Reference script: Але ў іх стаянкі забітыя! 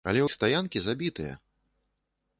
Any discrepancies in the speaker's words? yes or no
yes